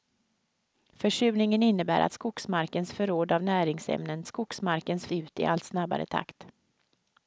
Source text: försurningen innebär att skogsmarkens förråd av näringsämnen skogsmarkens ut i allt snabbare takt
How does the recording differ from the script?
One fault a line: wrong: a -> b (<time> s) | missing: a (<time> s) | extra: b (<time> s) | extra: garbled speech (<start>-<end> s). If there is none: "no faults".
no faults